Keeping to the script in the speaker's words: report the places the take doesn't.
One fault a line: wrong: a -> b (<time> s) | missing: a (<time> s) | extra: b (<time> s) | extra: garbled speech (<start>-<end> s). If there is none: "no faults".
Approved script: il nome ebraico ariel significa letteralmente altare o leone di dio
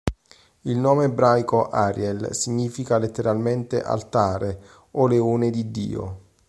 no faults